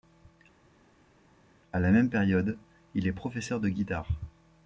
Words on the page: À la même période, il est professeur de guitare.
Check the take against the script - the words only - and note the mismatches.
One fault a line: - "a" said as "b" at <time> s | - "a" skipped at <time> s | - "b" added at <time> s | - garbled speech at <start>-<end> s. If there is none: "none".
none